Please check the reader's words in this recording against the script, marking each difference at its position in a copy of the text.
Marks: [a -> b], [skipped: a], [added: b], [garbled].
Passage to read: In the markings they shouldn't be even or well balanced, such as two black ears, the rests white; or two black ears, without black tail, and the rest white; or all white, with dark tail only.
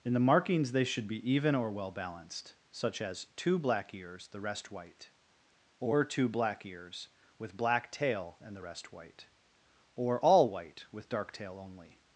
In the markings they [shouldn't -> should] be even or well balanced, such as two black ears, the [rests -> rest] white; or two black ears, [without -> with] black tail, and the rest white; or all white, with dark tail only.